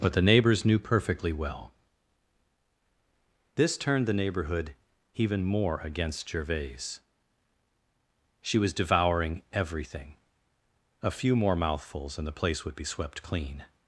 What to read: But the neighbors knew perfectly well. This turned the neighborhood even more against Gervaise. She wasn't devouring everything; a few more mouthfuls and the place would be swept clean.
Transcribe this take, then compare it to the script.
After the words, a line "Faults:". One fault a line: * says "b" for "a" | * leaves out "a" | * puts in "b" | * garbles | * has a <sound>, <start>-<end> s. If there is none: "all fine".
But the neighbors knew perfectly well. This turned the neighborhood even more against Gervaise. She was devouring everything; a few more mouthfuls and the place would be swept clean.
Faults:
* says "was" for "wasn't"